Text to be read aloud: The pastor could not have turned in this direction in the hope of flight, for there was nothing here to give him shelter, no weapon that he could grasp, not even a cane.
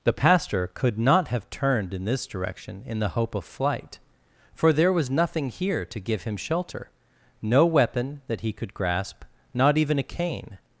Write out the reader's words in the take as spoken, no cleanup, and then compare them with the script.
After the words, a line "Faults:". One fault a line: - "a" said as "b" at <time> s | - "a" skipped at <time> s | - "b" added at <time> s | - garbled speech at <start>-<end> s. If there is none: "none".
The pastor could not have turned in this direction in the hope of flight, for there was nothing here to give him shelter, no weapon that he could grasp, not even a cane.
Faults:
none